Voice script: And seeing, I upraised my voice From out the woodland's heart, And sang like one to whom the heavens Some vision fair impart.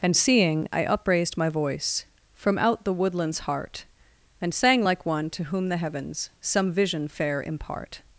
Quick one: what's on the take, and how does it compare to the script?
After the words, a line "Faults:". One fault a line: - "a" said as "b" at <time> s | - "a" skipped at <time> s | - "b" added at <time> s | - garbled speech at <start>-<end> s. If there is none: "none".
And seeing, I upraised my voice From out the woodland's heart, And sang like one to whom the heavens Some vision fair impart.
Faults:
none